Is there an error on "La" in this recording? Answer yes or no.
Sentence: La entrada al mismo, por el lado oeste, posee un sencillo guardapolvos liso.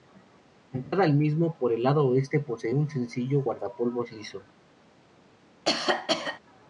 no